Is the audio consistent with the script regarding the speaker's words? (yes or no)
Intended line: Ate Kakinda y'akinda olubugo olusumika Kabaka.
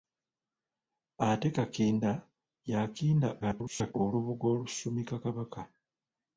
no